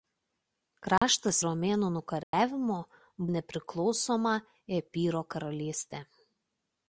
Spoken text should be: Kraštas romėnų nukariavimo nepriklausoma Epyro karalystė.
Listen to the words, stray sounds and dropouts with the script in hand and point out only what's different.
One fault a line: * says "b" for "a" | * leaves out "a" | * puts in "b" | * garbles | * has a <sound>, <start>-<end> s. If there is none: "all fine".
* has a dropout, 1.0-1.0 s
* has a dropout, 2.2-2.3 s